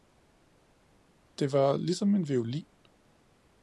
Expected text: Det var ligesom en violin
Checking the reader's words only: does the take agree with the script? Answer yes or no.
yes